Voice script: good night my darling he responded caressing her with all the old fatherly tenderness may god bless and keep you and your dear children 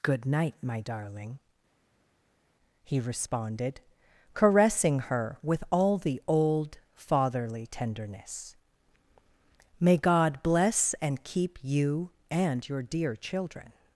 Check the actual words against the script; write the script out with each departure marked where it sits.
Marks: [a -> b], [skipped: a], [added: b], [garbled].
good night my darling he responded caressing her with all the old fatherly tenderness may god bless and keep you and your dear children